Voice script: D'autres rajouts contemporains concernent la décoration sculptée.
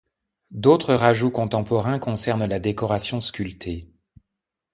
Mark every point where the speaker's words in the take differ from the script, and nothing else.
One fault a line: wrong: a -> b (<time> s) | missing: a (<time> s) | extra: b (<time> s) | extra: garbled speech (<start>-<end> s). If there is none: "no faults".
no faults